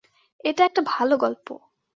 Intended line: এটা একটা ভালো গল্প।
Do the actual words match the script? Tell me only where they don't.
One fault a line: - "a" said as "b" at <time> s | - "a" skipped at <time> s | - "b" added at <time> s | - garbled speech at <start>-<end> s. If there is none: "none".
none